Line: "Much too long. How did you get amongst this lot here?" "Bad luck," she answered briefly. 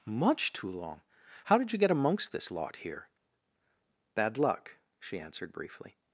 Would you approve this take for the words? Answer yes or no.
yes